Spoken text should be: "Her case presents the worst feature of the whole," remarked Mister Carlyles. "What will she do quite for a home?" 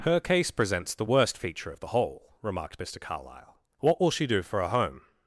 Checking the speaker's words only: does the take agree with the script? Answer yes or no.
no